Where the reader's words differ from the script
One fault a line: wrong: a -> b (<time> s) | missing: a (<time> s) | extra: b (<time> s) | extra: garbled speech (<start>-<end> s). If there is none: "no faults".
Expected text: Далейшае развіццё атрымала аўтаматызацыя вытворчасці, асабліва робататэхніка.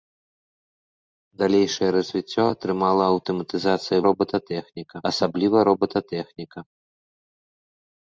wrong: вытворчасці -> робататэхніка (4.1 s)